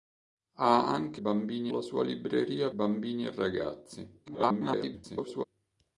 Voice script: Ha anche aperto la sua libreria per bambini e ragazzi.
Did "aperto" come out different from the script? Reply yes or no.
yes